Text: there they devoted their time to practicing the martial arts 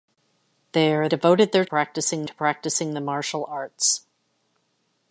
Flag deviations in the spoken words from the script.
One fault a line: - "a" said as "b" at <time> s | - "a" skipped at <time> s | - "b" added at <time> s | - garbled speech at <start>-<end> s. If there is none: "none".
- "they" skipped at 1.1 s
- "time" said as "practicing" at 1.7 s